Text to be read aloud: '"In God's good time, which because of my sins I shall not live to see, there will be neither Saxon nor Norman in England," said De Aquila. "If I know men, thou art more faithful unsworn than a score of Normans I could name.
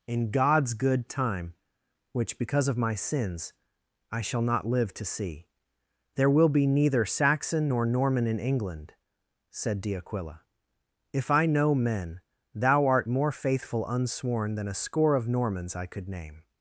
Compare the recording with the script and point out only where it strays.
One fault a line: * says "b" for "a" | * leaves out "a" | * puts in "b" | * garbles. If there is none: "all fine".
all fine